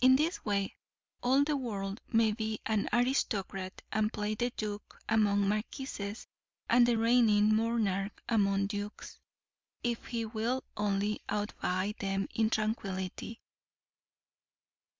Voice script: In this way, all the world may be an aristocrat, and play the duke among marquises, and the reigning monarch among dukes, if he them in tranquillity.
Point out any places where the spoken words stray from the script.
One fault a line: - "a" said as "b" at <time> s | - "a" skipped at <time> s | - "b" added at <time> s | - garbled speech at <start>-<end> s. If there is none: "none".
- "will only outvie" added at 10.2 s